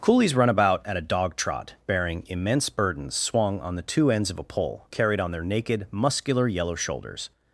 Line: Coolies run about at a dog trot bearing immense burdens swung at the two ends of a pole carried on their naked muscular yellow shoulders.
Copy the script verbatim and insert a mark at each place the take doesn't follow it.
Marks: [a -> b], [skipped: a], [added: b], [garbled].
Coolies run about at a dog trot bearing immense burdens swung [at -> on] the two ends of a pole carried on their naked muscular yellow shoulders.